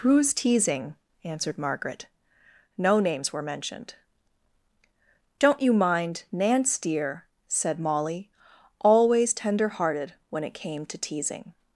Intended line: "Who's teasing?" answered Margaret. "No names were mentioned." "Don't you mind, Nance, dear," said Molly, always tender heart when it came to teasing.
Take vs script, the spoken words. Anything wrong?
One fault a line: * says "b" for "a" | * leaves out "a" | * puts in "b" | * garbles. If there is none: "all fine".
* says "hearted" for "heart"